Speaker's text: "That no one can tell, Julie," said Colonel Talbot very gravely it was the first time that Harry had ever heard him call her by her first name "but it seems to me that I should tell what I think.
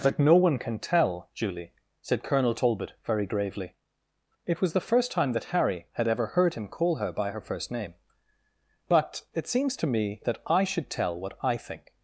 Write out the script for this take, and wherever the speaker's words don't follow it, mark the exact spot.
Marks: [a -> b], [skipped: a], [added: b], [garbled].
"That no one can tell, Julie," said Colonel Talbot very gravely it was the first time that Harry had ever heard him call her by her first name "but it seems to me that I should tell what I think.